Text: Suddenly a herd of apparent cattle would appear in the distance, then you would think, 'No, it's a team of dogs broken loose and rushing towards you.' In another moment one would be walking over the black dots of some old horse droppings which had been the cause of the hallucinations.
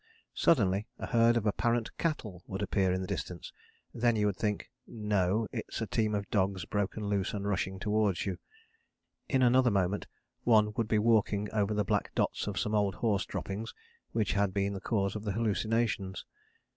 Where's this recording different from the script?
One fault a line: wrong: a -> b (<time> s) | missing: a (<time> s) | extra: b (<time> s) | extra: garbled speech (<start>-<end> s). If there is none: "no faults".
no faults